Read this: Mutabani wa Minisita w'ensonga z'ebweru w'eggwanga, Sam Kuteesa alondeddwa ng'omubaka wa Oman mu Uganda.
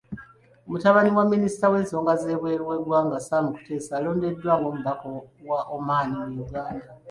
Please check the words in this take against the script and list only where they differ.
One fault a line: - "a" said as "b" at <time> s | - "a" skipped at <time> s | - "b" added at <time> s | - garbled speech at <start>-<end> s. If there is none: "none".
none